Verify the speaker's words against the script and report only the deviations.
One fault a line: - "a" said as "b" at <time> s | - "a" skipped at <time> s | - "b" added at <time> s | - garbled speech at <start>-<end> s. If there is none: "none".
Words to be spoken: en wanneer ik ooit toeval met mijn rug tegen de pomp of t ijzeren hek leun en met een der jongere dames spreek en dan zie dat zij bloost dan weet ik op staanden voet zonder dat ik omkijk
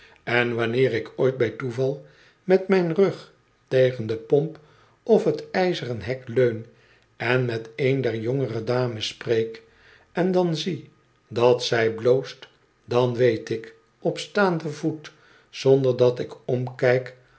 - "bij" added at 1.4 s